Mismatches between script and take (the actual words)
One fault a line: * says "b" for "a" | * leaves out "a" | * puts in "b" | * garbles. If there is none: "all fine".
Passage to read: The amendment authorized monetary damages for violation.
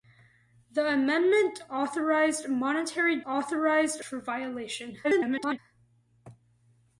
* says "authorized" for "damages"
* garbles